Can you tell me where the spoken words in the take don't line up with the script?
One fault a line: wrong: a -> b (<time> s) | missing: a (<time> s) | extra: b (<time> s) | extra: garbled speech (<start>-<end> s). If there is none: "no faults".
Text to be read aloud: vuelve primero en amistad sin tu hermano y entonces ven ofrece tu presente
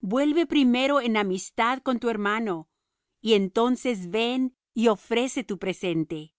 wrong: sin -> con (1.8 s)
extra: y (4.7 s)